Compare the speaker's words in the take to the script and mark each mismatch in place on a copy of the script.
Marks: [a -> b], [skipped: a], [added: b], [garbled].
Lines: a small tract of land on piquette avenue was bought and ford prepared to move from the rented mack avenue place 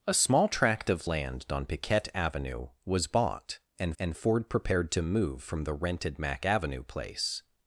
a small tract of land on piquette avenue was bought and [added: and] ford prepared to move from the rented mack avenue place